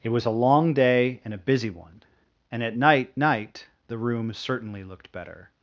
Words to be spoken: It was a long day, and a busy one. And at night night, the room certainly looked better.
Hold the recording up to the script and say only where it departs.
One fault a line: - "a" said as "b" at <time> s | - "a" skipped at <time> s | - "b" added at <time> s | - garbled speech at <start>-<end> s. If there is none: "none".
none